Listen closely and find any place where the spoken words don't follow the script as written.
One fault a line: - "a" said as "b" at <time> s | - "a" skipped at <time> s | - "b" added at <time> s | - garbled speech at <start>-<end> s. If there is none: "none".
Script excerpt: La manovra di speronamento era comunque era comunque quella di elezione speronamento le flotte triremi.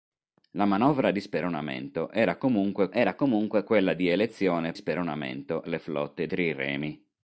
none